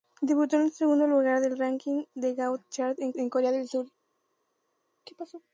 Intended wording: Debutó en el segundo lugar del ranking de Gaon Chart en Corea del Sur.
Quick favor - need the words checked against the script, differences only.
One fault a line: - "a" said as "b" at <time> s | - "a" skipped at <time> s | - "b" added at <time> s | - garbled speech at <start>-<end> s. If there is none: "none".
- "en" added at 3.2 s